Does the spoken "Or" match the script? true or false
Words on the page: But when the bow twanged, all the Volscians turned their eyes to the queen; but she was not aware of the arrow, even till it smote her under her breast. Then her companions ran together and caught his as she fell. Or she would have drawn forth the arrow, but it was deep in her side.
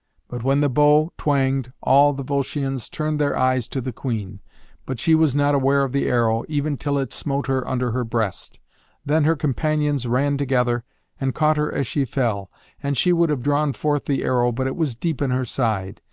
false